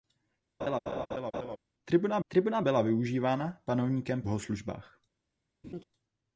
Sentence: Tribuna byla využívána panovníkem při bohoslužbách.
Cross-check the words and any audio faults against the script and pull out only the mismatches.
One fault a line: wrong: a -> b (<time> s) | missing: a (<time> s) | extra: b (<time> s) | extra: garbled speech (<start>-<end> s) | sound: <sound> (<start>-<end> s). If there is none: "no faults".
sound: laugh (0.6-1.6 s)
extra: tribuna (2.3 s)
missing: při (4.2 s)
sound: laugh (5.6-5.8 s)